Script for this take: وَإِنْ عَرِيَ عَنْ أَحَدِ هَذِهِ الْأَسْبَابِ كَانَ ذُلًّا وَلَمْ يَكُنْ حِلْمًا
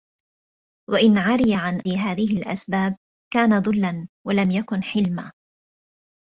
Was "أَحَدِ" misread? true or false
true